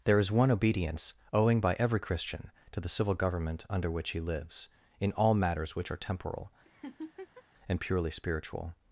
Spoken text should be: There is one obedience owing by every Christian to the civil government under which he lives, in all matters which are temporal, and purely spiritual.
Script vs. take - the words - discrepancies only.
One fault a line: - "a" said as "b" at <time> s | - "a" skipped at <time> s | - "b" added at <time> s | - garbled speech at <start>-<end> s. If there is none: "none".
none